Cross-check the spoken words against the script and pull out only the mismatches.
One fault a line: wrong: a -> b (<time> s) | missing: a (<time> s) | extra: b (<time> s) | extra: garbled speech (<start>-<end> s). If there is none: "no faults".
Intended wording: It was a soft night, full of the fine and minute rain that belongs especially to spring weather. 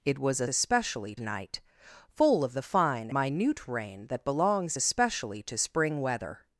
wrong: soft -> especially (0.5 s)
missing: and (3.1 s)